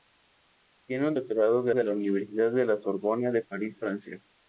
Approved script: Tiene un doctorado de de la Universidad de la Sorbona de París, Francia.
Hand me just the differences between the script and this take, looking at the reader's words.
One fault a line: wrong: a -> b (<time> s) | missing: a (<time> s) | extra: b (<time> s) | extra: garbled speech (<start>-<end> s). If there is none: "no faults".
no faults